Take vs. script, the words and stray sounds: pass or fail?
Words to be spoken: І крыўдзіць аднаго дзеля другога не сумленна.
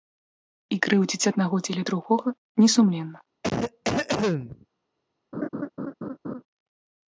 fail